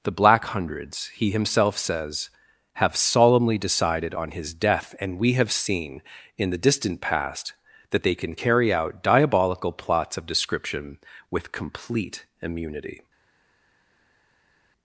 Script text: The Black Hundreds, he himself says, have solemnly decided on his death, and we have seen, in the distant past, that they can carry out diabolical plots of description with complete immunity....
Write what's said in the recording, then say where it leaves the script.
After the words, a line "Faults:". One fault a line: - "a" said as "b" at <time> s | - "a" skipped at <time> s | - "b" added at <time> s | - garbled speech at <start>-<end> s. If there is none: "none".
The Black Hundreds, he himself says, have solemnly decided on his death, and we have seen, in the distant past, that they can carry out diabolical plots of description with complete immunity....
Faults:
none